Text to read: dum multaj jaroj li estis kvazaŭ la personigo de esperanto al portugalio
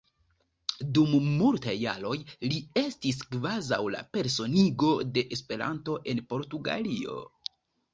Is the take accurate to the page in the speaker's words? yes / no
no